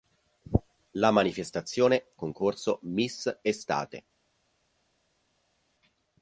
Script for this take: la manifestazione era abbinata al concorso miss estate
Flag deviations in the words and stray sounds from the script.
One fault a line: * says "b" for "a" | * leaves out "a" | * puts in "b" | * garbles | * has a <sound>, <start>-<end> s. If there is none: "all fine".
* leaves out "era abbinata al"